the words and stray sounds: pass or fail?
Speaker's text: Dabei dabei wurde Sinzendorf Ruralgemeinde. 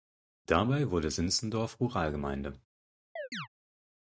fail